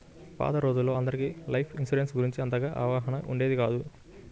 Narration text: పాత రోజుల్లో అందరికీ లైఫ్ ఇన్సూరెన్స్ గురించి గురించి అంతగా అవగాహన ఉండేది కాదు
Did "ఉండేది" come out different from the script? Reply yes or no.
no